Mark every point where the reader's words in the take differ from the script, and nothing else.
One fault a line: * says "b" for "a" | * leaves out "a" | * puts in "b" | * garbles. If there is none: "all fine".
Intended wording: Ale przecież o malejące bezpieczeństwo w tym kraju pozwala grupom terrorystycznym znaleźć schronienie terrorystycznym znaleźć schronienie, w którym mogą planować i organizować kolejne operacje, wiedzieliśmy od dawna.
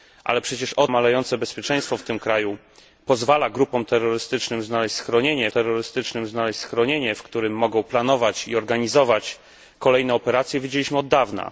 all fine